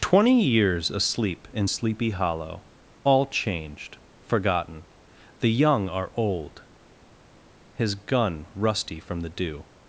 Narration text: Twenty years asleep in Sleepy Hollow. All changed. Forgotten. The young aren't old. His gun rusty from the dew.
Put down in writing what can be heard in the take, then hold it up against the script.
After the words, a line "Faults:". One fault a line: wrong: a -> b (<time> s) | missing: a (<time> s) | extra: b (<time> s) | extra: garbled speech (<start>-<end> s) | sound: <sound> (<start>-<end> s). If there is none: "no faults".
Twenty years asleep in Sleepy Hollow. All changed. Forgotten. The young are old. His gun rusty from the dew.
Faults:
wrong: aren't -> are (5.9 s)